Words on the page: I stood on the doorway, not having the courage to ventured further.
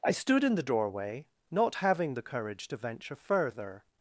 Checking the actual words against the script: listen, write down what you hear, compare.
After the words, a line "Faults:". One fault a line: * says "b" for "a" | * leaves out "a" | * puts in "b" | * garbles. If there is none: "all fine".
I stood in the doorway, not having the courage to venture further.
Faults:
* says "in" for "on"
* says "venture" for "ventured"